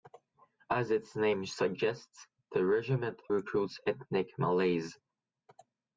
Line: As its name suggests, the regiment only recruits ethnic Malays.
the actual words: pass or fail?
fail